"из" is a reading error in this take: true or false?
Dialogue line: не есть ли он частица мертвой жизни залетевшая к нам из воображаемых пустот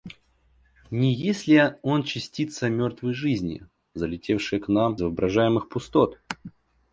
true